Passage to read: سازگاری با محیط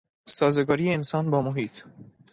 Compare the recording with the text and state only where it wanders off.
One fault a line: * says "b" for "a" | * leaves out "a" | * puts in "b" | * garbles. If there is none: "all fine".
* puts in "انسان"